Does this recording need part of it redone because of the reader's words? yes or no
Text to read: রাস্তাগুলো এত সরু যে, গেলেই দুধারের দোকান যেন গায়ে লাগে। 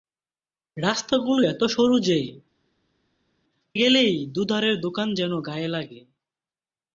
no